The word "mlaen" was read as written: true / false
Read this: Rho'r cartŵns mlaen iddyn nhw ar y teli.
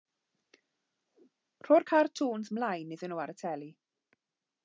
true